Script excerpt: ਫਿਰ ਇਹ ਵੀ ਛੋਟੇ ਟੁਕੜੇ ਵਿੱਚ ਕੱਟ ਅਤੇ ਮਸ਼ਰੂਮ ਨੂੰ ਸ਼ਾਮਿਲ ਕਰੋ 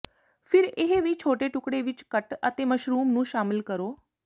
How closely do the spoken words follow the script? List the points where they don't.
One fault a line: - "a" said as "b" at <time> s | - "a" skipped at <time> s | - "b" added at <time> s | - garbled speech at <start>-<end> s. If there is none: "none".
none